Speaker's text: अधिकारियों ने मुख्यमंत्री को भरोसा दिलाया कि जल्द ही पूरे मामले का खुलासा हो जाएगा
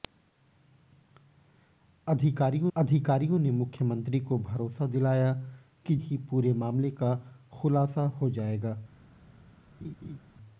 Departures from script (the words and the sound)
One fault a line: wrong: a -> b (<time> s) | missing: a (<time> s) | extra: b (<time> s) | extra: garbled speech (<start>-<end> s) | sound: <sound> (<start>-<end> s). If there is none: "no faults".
extra: अधिकारियों (2.8 s)
missing: जल्द (6.0 s)
sound: laugh (9.8-10.2 s)